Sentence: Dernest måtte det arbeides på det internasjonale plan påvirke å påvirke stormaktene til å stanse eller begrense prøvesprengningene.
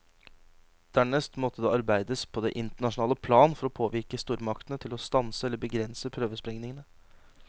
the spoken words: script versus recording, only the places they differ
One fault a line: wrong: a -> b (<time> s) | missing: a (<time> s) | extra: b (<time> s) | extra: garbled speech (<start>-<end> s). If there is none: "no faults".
wrong: påvirke -> for (3.6 s)